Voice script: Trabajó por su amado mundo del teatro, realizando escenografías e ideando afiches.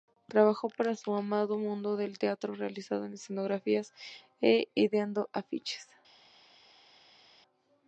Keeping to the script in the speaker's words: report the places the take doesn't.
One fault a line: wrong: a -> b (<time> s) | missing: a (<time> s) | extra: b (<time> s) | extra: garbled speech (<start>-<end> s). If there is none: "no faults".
wrong: por -> para (0.7 s)